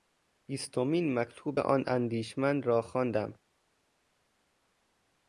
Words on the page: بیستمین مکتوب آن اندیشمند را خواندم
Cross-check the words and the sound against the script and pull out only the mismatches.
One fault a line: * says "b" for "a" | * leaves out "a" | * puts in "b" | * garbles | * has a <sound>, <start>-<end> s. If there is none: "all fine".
all fine